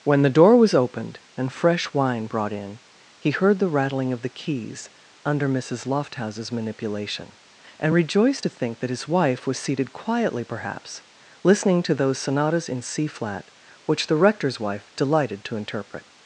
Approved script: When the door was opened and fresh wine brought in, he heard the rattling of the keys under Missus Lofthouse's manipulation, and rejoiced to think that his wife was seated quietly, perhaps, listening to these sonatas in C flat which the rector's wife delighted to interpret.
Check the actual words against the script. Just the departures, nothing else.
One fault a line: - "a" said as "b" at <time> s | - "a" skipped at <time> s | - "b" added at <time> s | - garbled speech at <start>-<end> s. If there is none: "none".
- "these" said as "those" at 11.9 s